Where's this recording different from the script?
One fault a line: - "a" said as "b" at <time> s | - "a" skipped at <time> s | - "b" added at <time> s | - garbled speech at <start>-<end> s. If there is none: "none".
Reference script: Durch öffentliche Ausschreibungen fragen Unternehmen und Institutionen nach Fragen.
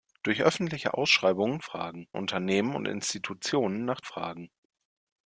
none